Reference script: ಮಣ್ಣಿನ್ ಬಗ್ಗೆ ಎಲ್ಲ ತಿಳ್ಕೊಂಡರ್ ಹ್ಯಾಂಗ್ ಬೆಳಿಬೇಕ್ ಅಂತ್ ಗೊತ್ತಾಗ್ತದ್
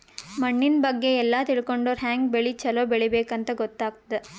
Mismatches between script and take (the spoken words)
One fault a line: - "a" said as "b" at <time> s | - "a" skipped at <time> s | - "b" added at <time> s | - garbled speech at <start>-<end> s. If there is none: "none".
- "ಬೆಳಿ ಛಲೋ" added at 2.3 s